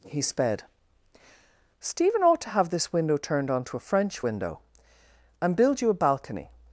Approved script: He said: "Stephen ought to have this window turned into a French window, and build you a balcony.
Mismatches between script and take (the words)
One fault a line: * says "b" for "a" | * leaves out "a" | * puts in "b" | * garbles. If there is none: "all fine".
* says "sped" for "said"
* says "onto" for "into"